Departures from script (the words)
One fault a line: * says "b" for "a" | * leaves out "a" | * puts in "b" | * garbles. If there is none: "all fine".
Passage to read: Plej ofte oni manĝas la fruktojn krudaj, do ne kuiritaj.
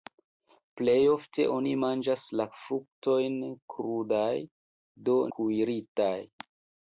* leaves out "ne"